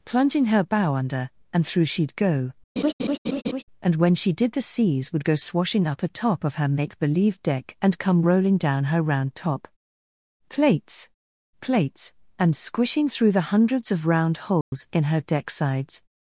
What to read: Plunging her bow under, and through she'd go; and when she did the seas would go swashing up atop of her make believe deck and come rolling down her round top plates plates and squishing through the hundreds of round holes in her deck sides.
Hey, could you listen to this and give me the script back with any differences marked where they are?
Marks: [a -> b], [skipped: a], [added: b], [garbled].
Plunging her bow under, and through she'd go; and when she did the seas would go swashing up atop of her make believe deck and come rolling down her round top plates plates and squishing through the hundreds of round holes in her deck sides.